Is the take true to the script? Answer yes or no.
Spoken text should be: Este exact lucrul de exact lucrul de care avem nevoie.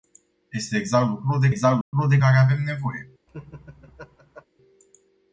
yes